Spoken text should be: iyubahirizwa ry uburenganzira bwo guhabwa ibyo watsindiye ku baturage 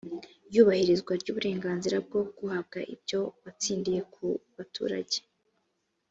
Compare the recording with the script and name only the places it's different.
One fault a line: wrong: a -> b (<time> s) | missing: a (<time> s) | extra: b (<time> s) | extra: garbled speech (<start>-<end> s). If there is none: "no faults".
no faults